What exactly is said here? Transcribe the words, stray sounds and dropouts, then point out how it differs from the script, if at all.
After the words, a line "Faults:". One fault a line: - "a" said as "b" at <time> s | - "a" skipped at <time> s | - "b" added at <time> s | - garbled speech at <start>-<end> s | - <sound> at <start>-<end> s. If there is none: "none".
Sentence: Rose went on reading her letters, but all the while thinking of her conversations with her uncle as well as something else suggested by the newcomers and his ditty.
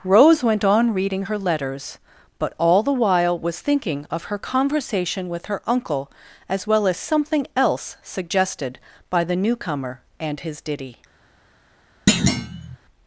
Rose went on reading her letters, but all the while was thinking of her conversation with her uncle as well as something else suggested by the newcomer and his ditty.
Faults:
- "was" added at 3.4 s
- "conversations" said as "conversation" at 4.4 s
- "newcomers" said as "newcomer" at 9.4 s
- thud at 12.1-12.8 s